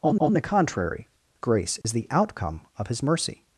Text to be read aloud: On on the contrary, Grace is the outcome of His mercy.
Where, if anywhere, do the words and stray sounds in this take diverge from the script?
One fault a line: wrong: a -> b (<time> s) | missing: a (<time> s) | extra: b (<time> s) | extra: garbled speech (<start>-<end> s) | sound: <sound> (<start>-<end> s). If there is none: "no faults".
sound: dropout (1.8-1.8 s)